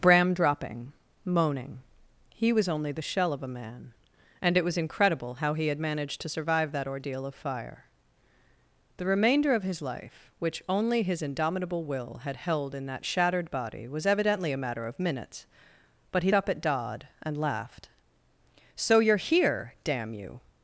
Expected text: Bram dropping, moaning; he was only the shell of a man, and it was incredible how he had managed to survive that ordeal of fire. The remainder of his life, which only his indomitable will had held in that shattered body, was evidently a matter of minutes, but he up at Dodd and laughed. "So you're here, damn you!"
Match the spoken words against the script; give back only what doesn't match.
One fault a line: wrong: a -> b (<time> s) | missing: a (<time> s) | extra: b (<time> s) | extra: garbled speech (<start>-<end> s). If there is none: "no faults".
no faults